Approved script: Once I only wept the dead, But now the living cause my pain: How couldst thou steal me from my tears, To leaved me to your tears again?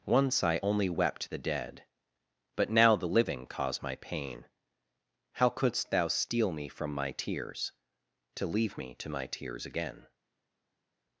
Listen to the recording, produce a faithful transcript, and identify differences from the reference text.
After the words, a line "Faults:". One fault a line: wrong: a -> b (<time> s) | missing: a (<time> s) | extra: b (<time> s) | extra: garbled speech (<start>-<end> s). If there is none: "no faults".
Once I only wept the dead, But now the living cause my pain: How couldst thou steal me from my tears, To leave me to my tears again?
Faults:
wrong: leaved -> leave (8.5 s)
wrong: your -> my (9.1 s)